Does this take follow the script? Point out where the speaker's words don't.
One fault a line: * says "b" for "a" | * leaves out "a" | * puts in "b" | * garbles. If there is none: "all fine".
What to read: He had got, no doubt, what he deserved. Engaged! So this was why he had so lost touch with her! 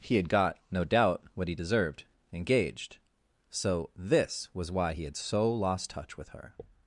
all fine